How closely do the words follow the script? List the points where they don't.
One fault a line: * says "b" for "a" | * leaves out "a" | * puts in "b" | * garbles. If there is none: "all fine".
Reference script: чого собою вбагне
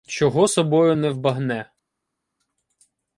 * puts in "не"